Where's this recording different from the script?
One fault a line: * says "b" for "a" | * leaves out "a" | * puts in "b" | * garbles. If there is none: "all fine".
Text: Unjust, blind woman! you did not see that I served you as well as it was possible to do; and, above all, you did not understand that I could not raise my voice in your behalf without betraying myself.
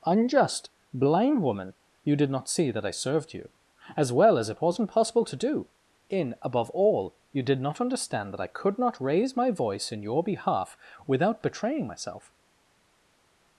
* says "wasn't" for "was"
* says "in" for "and"